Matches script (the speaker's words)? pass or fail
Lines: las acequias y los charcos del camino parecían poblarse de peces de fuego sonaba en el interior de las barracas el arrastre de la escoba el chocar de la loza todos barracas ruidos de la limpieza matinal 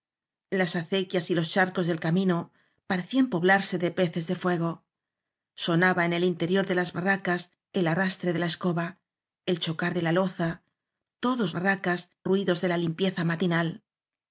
pass